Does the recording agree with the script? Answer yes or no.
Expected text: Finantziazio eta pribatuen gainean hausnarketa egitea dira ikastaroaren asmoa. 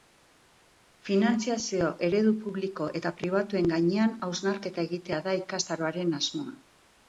no